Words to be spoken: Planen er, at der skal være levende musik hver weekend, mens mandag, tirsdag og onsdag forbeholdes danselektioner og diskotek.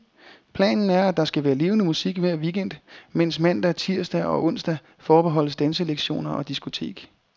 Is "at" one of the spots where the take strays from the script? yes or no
no